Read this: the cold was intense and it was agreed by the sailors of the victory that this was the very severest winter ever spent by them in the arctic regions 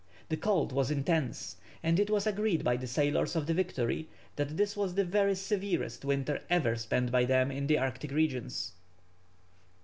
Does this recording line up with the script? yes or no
yes